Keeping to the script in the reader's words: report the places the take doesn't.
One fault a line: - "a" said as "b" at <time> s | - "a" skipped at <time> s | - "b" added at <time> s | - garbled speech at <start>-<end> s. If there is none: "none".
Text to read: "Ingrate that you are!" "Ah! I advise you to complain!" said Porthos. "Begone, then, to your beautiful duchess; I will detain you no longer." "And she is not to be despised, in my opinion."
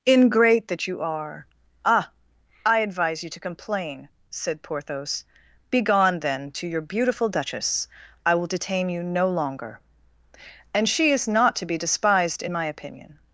none